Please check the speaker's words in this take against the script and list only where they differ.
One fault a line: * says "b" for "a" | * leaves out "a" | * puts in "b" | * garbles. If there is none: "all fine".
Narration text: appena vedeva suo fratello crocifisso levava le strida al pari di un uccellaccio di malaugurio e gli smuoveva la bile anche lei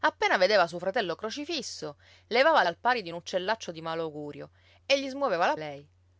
* leaves out "le strida"
* leaves out "bile anche"